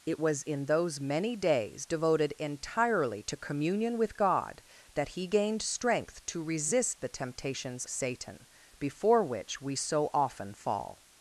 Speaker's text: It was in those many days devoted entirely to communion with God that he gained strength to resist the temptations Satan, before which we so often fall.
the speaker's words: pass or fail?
pass